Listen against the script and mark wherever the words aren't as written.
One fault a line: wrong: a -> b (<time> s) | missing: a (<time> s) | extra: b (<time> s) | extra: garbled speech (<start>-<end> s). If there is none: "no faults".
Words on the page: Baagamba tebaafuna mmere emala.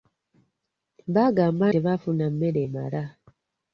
no faults